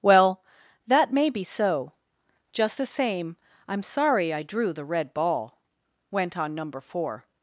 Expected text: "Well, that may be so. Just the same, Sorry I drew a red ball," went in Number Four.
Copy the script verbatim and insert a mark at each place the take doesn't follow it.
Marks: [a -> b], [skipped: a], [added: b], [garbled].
"Well, that may be so. Just the same, [added: I'm] Sorry I drew [a -> the] red ball," went [in -> on] Number Four.